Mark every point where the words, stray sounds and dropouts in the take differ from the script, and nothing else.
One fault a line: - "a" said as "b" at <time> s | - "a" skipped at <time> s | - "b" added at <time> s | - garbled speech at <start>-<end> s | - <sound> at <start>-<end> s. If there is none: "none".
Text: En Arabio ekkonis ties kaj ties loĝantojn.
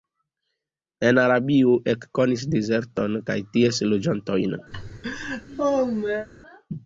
- "ties" said as "dezerton" at 2.6 s
- laugh at 4.7-6.3 s